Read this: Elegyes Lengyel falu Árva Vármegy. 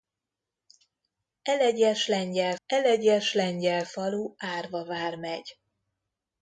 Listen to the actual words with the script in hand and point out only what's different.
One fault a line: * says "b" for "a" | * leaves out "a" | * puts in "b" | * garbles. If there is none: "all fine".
* puts in "elegyes Lengyel"